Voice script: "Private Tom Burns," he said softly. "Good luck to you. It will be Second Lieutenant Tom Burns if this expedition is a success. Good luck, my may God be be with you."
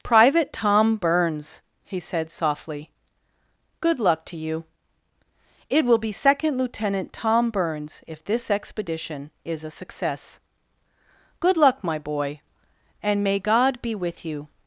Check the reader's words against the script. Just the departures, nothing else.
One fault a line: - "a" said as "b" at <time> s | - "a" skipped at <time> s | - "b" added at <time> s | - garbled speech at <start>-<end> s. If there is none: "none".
- "boy and" added at 12.0 s
- "be" skipped at 14.0 s